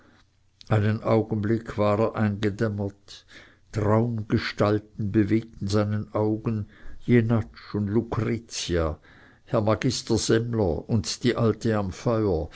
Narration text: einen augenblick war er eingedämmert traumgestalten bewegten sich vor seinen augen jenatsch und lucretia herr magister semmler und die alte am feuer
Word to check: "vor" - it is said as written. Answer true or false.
false